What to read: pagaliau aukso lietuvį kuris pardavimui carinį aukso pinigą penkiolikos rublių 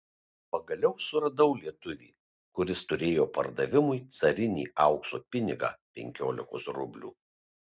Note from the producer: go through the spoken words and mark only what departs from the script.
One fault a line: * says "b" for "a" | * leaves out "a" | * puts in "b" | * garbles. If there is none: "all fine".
* says "suradau" for "aukso"
* puts in "turėjo"